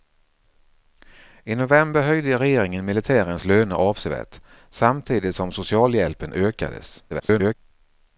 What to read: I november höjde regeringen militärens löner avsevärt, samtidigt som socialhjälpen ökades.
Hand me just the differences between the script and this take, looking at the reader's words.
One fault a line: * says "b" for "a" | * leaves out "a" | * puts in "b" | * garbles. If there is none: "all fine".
* garbles